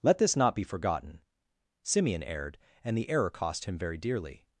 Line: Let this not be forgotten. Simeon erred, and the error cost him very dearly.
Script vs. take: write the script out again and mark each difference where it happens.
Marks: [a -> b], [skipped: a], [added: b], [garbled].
Let this not be forgotten. Simeon erred, and the error cost him very dearly.